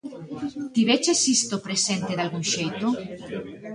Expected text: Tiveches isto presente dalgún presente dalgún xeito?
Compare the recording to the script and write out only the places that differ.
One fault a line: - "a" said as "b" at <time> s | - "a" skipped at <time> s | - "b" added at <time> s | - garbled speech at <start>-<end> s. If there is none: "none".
- "presente dalgún" skipped at 2.5 s